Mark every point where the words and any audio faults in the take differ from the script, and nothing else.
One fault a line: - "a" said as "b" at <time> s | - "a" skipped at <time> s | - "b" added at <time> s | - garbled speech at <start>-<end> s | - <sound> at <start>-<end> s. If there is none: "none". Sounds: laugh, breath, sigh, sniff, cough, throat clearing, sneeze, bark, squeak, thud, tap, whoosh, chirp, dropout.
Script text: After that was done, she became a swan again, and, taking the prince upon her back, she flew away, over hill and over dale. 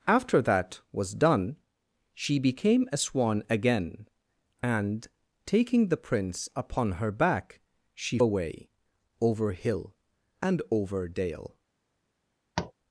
- "flew" skipped at 8.2 s
- tap at 12.6-12.7 s